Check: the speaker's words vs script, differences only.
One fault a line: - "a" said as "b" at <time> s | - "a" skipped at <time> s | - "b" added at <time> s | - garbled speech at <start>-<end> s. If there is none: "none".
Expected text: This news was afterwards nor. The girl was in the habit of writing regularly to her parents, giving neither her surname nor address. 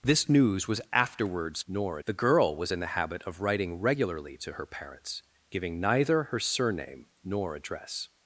none